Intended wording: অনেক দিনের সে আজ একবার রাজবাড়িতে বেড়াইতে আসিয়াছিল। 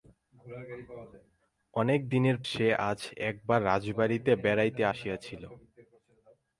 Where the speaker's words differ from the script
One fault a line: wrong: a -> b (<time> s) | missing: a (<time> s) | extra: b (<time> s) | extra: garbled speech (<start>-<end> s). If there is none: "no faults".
no faults